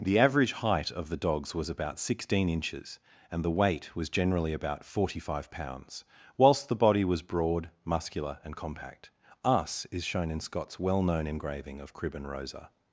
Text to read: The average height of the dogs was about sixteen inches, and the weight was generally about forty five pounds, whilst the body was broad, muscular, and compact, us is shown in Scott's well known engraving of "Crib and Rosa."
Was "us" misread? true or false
false